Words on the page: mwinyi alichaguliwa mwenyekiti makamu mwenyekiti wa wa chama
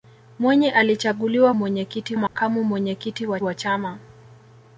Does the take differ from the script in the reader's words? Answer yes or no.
no